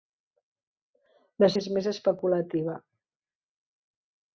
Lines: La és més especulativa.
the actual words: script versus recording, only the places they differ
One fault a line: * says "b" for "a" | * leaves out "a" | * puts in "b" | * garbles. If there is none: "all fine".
all fine